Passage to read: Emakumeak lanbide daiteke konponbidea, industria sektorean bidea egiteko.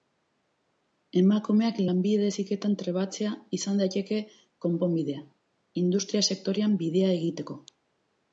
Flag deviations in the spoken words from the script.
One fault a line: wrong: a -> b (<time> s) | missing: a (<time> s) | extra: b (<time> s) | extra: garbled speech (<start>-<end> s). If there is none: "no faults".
extra: heziketan trebatzea izan (2.3 s)